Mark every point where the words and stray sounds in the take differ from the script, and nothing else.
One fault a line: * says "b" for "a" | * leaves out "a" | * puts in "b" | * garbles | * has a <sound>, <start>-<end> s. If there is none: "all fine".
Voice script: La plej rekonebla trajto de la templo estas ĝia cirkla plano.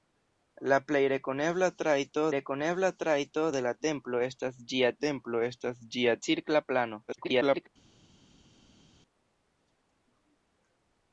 * puts in "rekonebla trajto"
* puts in "templo estas ĝia"
* garbles